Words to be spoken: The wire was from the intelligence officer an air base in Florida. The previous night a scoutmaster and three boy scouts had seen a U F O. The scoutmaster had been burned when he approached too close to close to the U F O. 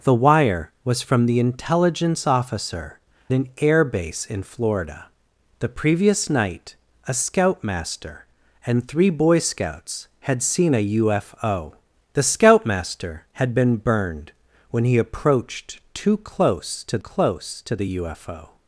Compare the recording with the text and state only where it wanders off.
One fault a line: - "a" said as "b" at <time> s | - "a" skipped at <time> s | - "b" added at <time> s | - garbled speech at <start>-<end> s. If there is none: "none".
none